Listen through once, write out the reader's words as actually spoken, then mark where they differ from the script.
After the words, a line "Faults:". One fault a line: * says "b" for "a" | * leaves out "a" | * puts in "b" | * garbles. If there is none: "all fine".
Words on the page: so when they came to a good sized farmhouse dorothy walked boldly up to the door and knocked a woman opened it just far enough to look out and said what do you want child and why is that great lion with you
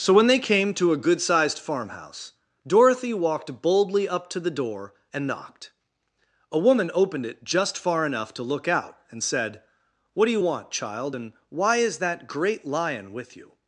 so when they came to a good sized farmhouse dorothy walked boldly up to the door and knocked a woman opened it just far enough to look out and said what do you want child and why is that great lion with you
Faults:
all fine